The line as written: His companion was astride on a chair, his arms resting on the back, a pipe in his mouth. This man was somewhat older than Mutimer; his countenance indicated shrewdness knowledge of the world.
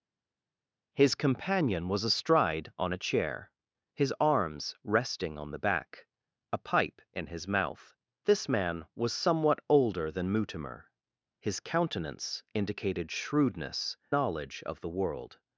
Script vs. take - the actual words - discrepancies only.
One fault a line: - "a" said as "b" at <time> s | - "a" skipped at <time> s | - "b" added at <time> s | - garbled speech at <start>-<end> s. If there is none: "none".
none